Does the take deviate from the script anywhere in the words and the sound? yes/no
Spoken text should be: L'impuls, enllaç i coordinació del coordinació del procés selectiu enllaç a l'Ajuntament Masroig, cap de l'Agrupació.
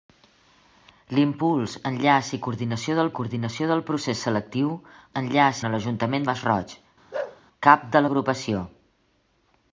yes